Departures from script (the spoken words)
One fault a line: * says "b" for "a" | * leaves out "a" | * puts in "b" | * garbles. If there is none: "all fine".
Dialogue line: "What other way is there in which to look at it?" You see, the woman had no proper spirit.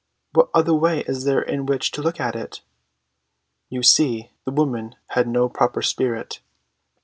all fine